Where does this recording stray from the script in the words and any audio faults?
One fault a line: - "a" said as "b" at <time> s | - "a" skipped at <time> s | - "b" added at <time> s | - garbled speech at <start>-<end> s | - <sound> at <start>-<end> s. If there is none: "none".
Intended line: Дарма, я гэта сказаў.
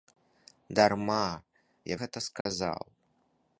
- dropout at 2.4-2.5 s